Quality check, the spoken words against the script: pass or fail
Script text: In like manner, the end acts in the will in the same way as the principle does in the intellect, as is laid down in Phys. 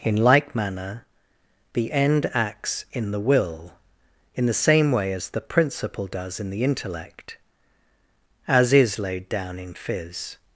pass